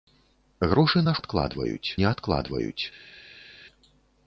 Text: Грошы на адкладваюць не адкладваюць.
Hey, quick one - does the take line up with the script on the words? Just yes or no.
yes